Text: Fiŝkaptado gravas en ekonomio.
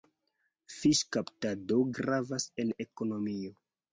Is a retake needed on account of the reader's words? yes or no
no